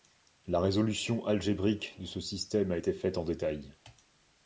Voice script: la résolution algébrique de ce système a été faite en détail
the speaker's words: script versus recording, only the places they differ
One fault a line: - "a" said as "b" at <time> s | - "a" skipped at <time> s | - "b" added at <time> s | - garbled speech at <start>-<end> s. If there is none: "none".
none